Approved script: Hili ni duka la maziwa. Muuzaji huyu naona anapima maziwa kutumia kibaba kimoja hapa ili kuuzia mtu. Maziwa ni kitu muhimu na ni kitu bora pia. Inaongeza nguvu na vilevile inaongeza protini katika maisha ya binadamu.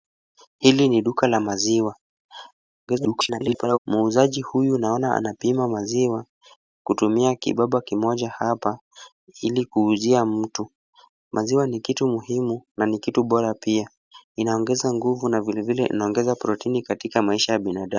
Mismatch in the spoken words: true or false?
true